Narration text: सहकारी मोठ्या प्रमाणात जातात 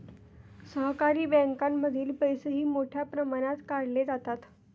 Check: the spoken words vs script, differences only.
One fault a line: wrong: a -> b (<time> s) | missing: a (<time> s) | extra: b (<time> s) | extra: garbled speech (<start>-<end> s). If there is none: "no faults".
extra: बँकांमधील पैसेही (1.3 s)
extra: काढले (3.7 s)